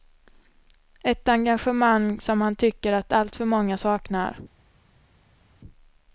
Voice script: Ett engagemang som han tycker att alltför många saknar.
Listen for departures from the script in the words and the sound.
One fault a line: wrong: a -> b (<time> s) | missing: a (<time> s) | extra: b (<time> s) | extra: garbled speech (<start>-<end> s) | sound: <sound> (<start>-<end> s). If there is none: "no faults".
no faults